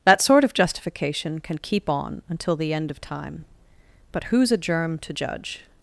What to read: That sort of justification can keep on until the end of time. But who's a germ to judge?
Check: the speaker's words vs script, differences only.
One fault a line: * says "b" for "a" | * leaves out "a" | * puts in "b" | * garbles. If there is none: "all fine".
all fine